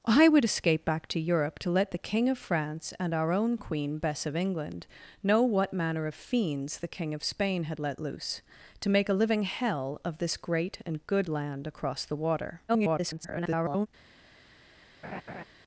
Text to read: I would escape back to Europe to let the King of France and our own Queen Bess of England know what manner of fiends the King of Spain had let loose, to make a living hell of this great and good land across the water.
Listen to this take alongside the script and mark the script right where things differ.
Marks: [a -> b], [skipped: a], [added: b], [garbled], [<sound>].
I would escape back to Europe to let the King of France and our own Queen Bess of England know what manner of fiends the King of Spain had let loose, to make a living hell of this great and good land across the water. [garbled] [laugh]